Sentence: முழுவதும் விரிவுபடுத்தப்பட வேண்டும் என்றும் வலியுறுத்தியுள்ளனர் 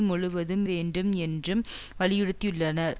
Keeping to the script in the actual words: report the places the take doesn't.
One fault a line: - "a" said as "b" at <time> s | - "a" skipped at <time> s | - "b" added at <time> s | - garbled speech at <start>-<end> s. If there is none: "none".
- "விரிவுபடுத்தப்பட" skipped at 0.7 s